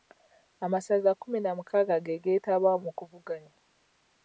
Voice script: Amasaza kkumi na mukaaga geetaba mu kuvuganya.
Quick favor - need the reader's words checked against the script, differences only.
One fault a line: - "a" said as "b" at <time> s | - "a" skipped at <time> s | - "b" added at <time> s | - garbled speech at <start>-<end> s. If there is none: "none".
- "ge" added at 2.0 s